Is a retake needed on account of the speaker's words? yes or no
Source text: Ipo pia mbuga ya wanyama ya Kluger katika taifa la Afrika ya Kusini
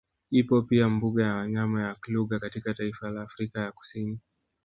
no